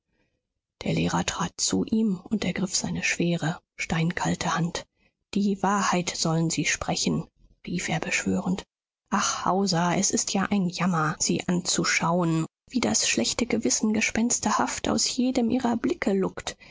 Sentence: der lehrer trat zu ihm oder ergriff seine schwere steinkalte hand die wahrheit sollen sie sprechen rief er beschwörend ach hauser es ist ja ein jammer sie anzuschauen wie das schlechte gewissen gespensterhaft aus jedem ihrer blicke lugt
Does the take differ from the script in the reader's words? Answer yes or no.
yes